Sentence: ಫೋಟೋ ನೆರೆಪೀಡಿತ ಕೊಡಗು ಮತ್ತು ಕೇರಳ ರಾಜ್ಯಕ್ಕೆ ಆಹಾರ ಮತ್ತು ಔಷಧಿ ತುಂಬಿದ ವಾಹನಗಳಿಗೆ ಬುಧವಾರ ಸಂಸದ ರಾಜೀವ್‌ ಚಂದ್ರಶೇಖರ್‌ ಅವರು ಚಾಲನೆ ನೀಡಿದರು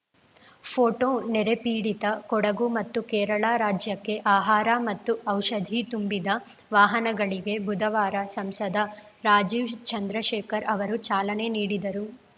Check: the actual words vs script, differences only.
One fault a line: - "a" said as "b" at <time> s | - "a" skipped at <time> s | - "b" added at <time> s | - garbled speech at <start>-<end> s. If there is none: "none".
none